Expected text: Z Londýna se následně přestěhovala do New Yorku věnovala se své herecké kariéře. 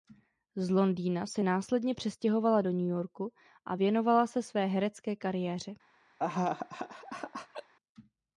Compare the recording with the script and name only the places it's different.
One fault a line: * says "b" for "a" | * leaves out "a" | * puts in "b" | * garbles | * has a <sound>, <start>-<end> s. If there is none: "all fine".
* puts in "a"
* has a laugh, 6.2-7.7 s